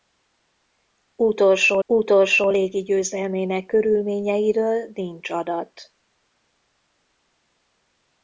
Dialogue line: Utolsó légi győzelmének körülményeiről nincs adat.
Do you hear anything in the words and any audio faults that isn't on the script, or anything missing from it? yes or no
yes